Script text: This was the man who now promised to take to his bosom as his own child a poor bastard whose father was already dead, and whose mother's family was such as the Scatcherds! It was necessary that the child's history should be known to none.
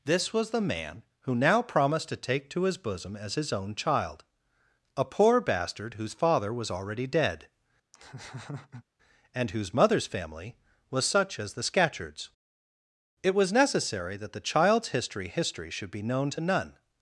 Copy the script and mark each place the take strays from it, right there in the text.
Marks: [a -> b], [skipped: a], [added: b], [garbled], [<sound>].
This was the man who now promised to take to his bosom as his own child a poor bastard whose father was already dead, [laugh] and whose mother's family was such as the Scatcherds! It was necessary that the child's history [added: history] should be known to none.